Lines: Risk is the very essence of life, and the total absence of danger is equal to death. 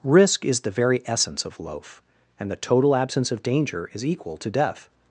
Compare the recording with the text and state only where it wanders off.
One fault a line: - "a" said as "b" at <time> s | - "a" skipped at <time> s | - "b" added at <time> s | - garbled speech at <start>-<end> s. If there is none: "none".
- "life" said as "loaf" at 1.6 s